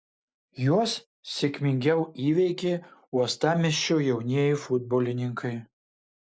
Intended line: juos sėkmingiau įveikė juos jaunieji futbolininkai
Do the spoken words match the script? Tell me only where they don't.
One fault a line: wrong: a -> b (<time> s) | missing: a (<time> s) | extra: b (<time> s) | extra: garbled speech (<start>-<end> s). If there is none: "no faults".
wrong: juos -> uostamiesčio (3.2 s)